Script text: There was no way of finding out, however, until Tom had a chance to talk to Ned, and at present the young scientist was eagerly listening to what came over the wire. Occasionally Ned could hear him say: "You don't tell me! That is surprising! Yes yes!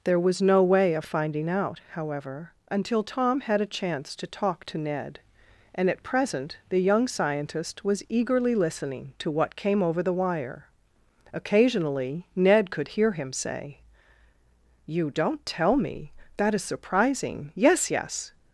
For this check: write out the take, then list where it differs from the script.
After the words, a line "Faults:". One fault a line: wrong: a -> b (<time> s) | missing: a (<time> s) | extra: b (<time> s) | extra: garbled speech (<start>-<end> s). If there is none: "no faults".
There was no way of finding out, however, until Tom had a chance to talk to Ned, and at present the young scientist was eagerly listening to what came over the wire. Occasionally Ned could hear him say: "You don't tell me! That is surprising! Yes yes!
Faults:
no faults